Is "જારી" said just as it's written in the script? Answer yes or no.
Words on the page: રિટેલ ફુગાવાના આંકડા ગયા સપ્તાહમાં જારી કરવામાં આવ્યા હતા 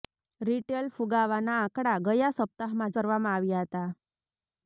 no